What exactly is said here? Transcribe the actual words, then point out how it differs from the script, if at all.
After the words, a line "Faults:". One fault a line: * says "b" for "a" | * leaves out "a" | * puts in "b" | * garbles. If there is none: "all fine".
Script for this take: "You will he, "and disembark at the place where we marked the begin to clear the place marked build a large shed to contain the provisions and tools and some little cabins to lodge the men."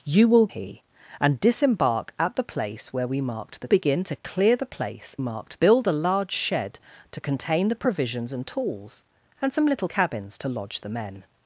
"You will he, "and disembark at the place where we marked the begin to clear the place marked build a large shed to contain the provisions and tools and some little cabins to lodge the men."
Faults:
all fine